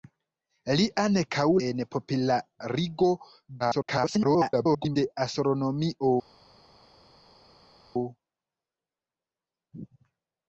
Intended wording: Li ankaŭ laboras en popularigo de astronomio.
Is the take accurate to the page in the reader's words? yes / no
no